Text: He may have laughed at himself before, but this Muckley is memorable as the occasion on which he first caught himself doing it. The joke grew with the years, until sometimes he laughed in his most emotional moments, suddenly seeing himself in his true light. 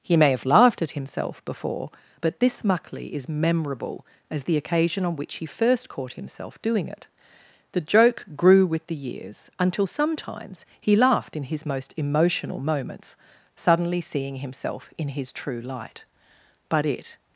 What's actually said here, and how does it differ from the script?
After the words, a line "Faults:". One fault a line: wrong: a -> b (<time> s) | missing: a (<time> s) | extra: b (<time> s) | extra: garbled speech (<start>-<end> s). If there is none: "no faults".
He may have laughed at himself before, but this Muckley is memorable as the occasion on which he first caught himself doing it. The joke grew with the years, until sometimes he laughed in his most emotional moments, suddenly seeing himself in his true light. But it
Faults:
extra: But it (16.7 s)